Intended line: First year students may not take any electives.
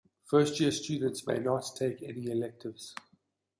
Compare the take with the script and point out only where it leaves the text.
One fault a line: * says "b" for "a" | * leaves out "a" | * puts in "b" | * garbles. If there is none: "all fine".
all fine